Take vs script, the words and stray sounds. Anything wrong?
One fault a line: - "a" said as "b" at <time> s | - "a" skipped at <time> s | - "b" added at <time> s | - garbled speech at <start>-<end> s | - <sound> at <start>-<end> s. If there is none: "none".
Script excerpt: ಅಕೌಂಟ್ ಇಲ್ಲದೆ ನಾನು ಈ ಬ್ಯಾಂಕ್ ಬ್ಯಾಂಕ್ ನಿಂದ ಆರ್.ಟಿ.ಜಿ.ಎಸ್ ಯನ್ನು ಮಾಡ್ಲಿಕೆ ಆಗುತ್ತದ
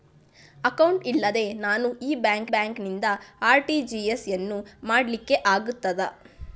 none